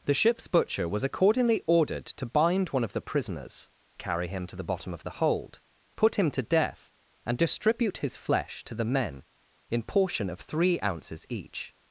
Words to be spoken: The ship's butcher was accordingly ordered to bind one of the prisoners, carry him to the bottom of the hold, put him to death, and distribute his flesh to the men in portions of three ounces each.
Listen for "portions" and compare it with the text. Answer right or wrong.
wrong